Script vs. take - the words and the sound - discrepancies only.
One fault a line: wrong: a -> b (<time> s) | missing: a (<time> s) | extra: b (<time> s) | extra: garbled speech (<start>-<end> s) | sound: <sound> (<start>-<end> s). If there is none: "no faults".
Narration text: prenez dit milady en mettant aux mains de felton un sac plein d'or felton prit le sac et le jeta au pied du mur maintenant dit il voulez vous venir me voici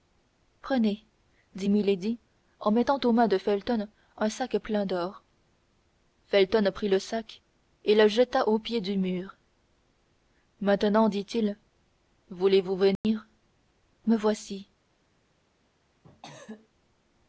sound: dropout (13.0-13.0 s)
sound: cough (16.0-16.7 s)